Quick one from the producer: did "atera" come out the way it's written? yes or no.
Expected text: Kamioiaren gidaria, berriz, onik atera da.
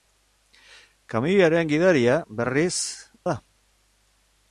no